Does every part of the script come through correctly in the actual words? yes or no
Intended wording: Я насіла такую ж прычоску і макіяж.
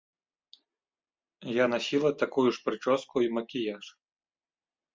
yes